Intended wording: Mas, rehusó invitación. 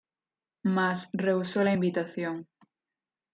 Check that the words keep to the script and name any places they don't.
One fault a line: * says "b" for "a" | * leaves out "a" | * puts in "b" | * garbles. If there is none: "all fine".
* puts in "la"